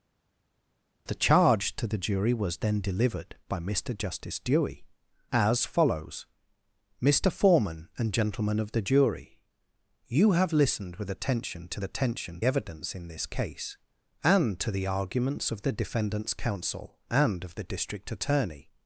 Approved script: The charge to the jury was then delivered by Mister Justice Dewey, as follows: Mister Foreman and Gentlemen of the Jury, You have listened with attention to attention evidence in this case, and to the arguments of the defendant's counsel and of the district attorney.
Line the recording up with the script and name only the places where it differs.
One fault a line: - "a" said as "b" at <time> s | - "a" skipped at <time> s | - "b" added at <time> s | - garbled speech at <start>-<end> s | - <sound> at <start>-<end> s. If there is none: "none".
none